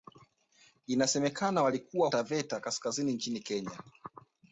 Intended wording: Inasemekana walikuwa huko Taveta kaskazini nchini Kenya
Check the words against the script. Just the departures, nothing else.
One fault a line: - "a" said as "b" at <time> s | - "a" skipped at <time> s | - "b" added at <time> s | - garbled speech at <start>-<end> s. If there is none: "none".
- "huko" skipped at 2.1 s